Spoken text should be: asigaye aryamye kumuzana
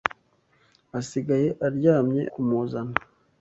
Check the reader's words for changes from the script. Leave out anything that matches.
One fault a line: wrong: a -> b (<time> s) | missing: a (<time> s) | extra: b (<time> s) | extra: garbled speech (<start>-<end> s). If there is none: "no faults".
no faults